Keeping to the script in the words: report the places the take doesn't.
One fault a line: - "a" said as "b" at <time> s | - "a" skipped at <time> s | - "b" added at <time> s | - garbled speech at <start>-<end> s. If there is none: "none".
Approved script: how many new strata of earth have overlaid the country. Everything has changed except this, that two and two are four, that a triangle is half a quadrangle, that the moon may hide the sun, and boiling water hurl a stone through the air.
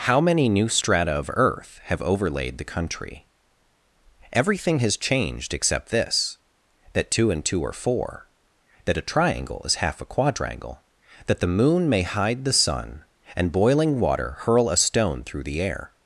none